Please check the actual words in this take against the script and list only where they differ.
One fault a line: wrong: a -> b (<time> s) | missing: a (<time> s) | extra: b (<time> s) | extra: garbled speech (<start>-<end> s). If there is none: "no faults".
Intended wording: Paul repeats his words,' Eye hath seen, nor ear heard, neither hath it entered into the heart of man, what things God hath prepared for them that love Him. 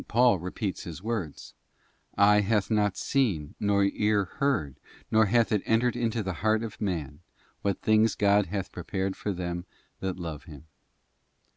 extra: not (2.7 s)